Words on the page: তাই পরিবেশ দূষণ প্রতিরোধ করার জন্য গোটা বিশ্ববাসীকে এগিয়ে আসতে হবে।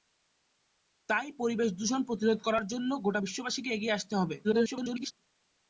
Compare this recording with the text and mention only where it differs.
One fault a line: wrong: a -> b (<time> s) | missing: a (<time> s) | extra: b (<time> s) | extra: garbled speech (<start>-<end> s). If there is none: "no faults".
extra: garbled speech (4.4-5.1 s)